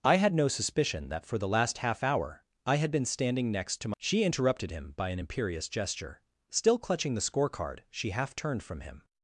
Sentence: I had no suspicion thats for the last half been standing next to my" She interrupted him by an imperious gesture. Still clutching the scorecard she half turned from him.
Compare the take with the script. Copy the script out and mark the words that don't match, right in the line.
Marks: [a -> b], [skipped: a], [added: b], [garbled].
I had no suspicion [thats -> that] for the last half [added: hour I had] been standing next to my" She interrupted him by an imperious gesture. Still clutching the scorecard she half turned from him.